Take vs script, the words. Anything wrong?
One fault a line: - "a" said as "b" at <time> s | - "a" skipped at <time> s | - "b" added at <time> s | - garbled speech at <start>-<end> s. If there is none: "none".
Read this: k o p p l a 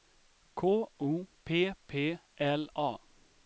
none